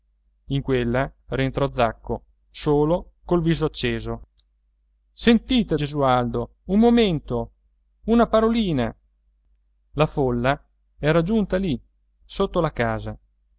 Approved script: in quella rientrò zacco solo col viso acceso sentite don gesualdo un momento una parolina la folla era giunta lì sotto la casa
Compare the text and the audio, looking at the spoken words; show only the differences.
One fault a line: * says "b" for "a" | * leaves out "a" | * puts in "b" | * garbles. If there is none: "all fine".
* leaves out "don"